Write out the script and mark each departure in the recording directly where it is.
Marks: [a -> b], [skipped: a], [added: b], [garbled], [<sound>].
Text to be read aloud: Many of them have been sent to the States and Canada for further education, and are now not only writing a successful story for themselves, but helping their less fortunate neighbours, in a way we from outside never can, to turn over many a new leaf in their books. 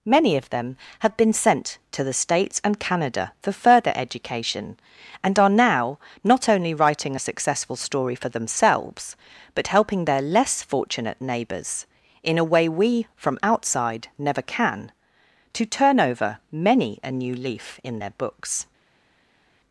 Many of them have been sent to the States and Canada for further education, and are now not only writing a successful story for themselves, but helping their less fortunate neighbours, in a way we from outside never can, to turn over many a new leaf in their books.